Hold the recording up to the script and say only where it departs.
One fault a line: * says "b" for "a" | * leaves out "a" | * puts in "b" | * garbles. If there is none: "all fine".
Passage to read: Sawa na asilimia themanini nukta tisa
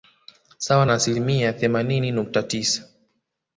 all fine